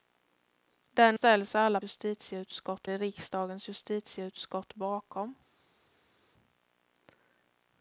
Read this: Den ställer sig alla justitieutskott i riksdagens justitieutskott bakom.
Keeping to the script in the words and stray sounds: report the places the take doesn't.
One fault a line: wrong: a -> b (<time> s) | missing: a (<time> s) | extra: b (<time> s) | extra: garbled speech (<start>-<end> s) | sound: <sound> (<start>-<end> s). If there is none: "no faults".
no faults